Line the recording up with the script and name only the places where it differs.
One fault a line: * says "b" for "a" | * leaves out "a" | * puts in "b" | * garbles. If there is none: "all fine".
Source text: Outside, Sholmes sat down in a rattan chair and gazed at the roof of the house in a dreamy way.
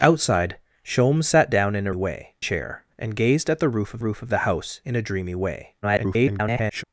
* says "way" for "rattan"
* puts in "roof of"
* garbles